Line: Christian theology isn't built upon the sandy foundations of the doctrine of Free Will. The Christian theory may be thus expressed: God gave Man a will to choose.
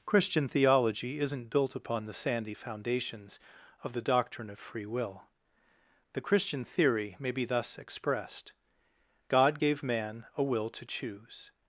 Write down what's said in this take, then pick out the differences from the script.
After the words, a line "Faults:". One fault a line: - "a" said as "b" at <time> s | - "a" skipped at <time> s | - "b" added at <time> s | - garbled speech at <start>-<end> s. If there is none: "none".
Christian theology isn't built upon the sandy foundations of the doctrine of Free Will. The Christian theory may be thus expressed: God gave Man a will to choose.
Faults:
none